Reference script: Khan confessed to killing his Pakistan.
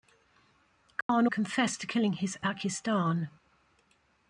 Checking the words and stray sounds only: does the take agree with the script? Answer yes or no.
no